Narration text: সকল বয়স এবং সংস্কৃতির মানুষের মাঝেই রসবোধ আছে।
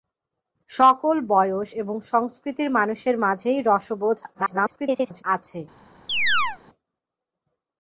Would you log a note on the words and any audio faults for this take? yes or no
yes